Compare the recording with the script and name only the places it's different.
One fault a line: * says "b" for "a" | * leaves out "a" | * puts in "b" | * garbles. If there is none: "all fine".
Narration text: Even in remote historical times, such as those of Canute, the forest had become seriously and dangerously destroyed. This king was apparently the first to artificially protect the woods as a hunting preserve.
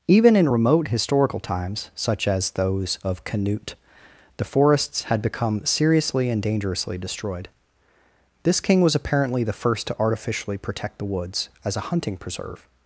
* says "forests" for "forest"